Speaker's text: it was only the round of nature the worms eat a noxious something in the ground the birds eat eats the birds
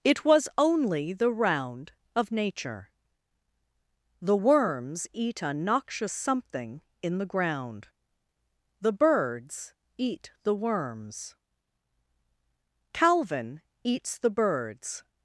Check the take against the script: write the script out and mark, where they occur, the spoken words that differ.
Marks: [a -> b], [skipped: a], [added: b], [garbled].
it was only the round of nature the worms eat a noxious something in the ground the birds eat [added: the worms calvin] eats the birds